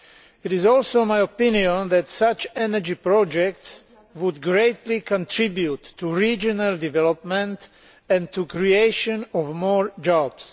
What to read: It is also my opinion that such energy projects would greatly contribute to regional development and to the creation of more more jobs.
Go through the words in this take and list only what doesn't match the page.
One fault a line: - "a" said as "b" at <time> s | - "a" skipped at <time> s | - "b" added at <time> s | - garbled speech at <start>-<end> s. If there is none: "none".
- "more" skipped at 9.9 s